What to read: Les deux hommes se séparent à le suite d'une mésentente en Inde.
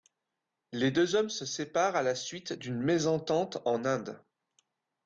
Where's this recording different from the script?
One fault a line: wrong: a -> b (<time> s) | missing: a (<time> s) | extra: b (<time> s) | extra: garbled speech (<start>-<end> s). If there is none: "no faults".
wrong: le -> la (2.0 s)